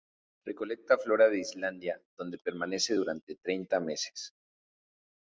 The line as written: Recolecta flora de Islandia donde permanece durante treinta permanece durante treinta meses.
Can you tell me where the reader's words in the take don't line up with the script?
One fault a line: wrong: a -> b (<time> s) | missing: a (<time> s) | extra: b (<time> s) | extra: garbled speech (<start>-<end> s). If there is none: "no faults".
missing: permanece durante treinta (3.8 s)